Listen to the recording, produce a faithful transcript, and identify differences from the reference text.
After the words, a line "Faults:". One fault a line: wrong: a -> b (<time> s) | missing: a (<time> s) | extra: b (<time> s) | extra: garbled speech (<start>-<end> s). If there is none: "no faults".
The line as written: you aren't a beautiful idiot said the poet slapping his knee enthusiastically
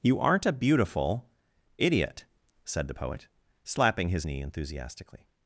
you aren't a beautiful idiot said the poet slapping his knee enthusiastically
Faults:
no faults